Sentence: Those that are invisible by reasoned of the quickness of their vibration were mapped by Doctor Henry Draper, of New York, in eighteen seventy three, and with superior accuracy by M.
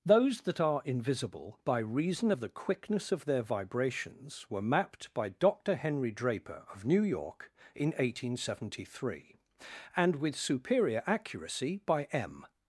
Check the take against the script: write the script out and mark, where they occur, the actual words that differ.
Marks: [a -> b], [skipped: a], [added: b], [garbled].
Those that are invisible by [reasoned -> reason] of the quickness of their [vibration -> vibrations] were mapped by Doctor Henry Draper, of New York, in eighteen seventy three, and with superior accuracy by M.